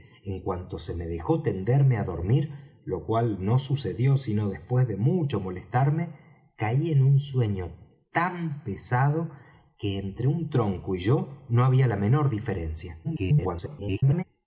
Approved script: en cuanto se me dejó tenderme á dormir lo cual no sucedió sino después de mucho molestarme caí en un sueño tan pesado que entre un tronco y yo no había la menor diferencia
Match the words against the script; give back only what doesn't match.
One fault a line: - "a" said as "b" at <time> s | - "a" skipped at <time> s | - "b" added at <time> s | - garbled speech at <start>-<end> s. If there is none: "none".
- garbled speech at 13.0-14.2 s